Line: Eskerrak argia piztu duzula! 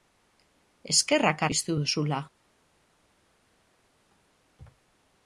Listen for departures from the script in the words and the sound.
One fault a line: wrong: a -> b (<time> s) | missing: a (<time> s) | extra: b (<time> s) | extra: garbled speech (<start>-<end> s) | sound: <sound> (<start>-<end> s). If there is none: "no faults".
missing: argia (1.4 s)